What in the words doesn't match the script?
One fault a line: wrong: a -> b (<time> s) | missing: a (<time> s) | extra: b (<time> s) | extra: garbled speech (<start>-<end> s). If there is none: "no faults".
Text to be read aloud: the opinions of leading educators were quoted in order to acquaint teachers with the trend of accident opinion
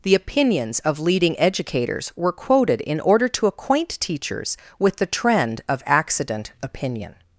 no faults